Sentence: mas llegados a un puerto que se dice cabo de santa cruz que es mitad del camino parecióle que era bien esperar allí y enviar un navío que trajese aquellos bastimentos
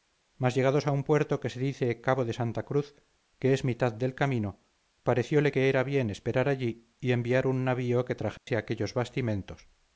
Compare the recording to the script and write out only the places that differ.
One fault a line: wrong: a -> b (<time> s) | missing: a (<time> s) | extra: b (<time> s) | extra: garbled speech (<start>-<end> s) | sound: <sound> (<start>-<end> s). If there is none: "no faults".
sound: dropout (8.4-8.5 s)